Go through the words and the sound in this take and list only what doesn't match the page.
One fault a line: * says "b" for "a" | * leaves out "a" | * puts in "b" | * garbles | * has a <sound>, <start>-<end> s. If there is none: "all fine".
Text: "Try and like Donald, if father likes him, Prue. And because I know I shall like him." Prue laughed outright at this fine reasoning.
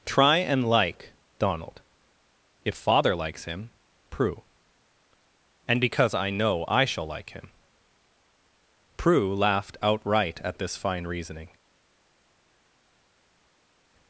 all fine